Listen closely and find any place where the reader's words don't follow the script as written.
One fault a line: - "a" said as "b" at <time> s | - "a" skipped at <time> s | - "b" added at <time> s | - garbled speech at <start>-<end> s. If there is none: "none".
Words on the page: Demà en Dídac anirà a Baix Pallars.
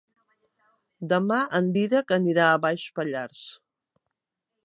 none